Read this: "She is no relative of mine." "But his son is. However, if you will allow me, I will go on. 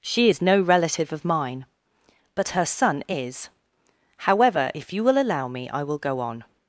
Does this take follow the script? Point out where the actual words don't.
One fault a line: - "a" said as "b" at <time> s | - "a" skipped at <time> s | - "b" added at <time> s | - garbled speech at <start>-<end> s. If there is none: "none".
- "his" said as "her" at 2.5 s